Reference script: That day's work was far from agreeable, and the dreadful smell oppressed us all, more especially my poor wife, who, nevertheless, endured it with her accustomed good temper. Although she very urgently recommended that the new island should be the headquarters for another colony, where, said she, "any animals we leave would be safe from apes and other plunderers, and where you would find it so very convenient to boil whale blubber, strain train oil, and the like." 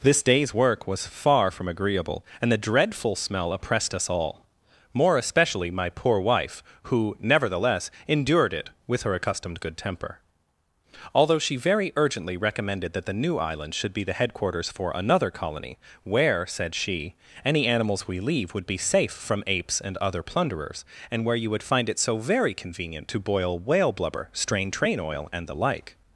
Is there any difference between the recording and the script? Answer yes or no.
yes